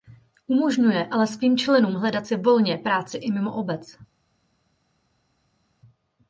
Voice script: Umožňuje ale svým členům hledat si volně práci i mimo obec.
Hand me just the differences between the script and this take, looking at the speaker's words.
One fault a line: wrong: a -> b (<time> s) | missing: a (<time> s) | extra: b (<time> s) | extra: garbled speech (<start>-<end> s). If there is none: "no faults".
no faults